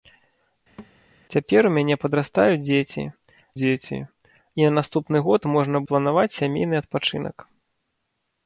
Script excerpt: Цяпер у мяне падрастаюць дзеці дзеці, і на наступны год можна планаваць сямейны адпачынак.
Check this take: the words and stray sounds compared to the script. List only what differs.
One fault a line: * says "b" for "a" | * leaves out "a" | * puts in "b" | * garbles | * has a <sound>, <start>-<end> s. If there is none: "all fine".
* has a thud, 0.8-1.0 s